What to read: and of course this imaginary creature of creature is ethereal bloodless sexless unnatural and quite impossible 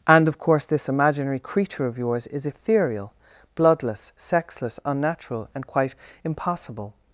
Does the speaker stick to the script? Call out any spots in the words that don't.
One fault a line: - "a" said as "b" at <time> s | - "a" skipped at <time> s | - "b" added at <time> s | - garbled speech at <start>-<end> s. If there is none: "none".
- "creature" said as "yours" at 2.0 s